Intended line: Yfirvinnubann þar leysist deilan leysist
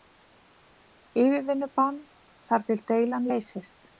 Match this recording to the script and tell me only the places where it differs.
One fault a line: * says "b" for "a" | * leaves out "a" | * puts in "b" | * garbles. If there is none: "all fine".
* says "til" for "leysist"